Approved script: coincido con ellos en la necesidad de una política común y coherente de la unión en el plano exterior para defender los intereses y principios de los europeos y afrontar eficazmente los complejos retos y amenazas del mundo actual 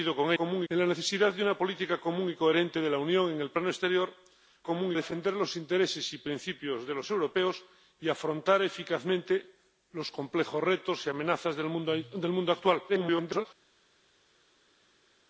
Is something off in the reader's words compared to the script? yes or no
yes